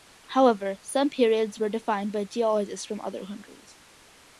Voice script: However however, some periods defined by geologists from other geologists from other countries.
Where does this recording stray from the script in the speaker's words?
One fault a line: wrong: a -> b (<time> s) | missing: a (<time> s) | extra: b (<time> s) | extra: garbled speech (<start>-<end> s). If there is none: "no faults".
missing: however (0.8 s)
extra: were (1.6 s)
missing: geologists from other (3.2 s)